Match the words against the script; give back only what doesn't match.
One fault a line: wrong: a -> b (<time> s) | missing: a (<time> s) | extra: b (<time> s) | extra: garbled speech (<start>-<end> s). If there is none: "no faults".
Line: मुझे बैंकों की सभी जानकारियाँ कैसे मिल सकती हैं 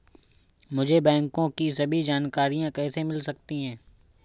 no faults